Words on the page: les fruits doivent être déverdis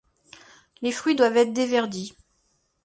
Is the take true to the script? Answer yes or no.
yes